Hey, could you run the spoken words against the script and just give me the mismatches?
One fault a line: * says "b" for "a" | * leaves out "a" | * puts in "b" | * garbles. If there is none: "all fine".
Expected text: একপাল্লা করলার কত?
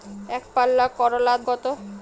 all fine